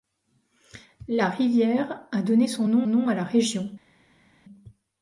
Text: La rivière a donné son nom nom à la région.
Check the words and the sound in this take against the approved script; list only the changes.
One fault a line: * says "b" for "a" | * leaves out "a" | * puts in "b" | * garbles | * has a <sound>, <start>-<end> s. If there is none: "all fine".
all fine